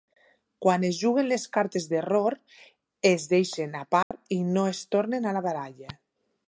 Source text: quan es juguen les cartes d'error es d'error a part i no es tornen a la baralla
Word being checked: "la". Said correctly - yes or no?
yes